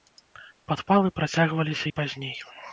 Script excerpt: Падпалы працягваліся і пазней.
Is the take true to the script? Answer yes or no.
yes